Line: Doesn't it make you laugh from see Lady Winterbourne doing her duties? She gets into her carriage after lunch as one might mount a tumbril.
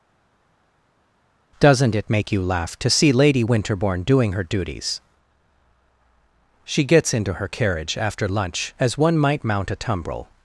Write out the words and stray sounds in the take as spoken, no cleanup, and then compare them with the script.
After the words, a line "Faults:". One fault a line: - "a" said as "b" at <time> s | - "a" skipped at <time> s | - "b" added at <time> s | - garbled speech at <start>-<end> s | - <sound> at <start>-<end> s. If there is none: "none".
Doesn't it make you laugh to see Lady Winterbourne doing her duties? She gets into her carriage after lunch as one might mount a tumbril.
Faults:
- "from" said as "to" at 2.8 s